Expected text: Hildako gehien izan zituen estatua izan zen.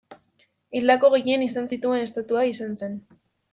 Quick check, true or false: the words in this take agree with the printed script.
true